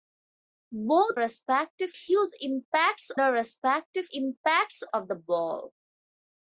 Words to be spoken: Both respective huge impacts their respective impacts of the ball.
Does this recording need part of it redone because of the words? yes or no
no